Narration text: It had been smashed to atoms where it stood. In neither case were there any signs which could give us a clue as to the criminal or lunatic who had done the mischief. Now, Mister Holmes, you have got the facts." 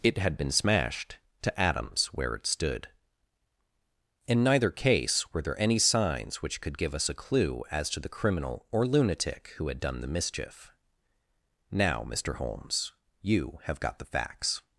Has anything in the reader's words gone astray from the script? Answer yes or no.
no